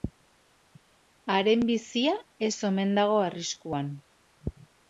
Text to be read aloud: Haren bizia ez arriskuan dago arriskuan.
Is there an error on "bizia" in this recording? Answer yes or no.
no